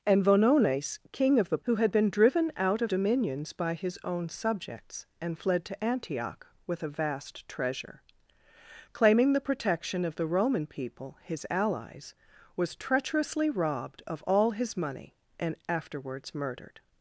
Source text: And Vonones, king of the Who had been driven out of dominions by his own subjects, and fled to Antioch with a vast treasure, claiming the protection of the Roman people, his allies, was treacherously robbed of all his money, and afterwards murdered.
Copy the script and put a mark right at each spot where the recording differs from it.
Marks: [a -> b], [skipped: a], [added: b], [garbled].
And Vonones, king of the Who had been driven out of dominions by his own subjects, and fled to Antioch with a vast treasure, claiming the protection of the Roman people, his allies, was treacherously robbed of all his money, and afterwards murdered.